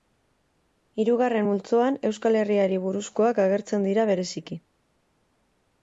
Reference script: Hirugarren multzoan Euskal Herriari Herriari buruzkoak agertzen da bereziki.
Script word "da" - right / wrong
wrong